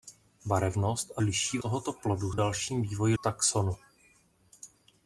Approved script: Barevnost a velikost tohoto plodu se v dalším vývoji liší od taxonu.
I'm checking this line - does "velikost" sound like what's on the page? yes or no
no